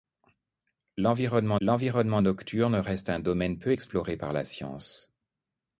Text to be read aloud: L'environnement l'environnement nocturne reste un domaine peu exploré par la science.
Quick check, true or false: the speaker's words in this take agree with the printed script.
true